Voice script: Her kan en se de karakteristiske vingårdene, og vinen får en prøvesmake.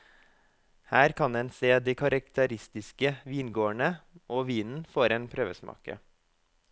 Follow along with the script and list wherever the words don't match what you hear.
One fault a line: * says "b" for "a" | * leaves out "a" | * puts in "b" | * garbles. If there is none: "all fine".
all fine